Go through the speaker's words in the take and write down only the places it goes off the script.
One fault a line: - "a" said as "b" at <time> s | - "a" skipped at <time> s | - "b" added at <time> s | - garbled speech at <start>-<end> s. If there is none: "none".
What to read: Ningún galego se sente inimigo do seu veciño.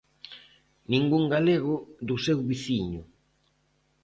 - "se sente inimigo" skipped at 1.8 s